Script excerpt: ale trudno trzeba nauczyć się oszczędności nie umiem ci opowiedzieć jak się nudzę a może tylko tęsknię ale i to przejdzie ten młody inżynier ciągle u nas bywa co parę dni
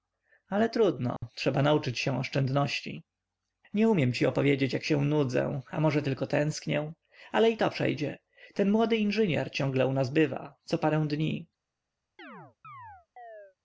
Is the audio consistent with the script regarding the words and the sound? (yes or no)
no